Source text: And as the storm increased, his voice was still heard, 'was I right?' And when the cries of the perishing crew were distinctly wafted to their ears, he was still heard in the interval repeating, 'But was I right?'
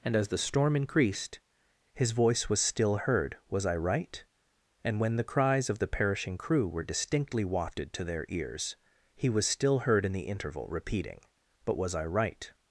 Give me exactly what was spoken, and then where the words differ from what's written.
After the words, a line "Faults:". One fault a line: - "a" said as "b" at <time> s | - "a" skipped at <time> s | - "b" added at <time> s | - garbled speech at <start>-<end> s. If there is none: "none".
And as the storm increased, his voice was still heard, 'was I right?' And when the cries of the perishing crew were distinctly wafted to their ears, he was still heard in the interval repeating, 'But was I right?'
Faults:
none